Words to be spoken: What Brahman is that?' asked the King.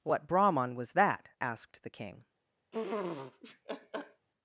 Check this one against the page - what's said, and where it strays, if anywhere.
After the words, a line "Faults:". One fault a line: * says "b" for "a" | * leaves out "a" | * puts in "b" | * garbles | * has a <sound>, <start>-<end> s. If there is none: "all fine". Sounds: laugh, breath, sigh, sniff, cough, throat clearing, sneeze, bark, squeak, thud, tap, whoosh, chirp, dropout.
What Brahman was that?' asked the King.
Faults:
* says "was" for "is"
* has a laugh, 2.7-4.3 s